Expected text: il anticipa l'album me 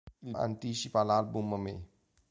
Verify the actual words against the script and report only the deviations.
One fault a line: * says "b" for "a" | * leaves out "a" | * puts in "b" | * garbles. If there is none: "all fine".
all fine